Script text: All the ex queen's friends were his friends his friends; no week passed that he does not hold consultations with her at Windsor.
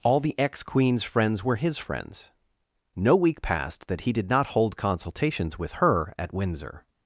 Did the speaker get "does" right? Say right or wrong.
wrong